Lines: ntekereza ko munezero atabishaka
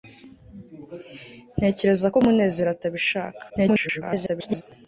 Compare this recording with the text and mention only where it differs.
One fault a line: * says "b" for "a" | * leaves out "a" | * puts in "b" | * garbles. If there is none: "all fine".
* garbles